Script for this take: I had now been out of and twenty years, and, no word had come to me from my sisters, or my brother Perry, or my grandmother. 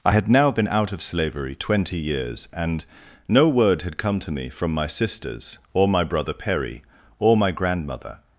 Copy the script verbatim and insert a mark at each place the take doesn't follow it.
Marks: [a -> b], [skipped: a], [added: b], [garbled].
I had now been out of [and -> slavery] twenty years, and, no word had come to me from my sisters, or my brother Perry, or my grandmother.